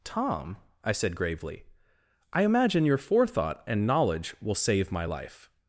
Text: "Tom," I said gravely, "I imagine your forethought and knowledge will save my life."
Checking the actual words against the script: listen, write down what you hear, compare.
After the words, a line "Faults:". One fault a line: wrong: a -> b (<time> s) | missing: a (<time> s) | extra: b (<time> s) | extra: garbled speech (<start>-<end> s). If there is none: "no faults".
"Tom," I said gravely, "I imagine your forethought and knowledge will save my life."
Faults:
no faults